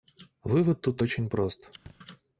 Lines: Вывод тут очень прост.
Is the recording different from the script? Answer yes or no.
no